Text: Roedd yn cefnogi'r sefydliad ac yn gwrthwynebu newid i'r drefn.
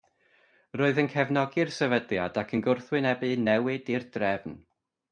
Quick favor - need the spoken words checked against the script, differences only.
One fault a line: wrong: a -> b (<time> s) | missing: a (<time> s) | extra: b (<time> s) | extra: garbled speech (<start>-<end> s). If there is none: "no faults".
no faults